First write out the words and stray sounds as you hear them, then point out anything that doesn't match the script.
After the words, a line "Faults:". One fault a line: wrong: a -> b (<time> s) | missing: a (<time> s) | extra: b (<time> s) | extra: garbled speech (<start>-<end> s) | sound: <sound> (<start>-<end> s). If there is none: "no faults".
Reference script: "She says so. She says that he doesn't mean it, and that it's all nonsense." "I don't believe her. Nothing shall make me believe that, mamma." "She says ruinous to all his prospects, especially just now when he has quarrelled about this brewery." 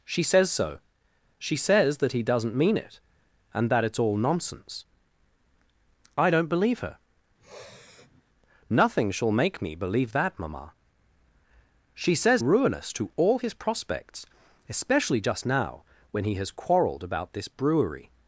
"She says so. She says that he doesn't mean it, and that it's all nonsense." "I don't believe her. Nothing shall make me believe that, mamma." "She says ruinous to all his prospects, especially just now when he has quarrelled about this brewery."
Faults:
sound: sniff (7.4-8.2 s)